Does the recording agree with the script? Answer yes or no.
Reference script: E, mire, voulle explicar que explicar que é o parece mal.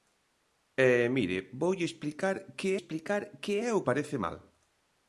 yes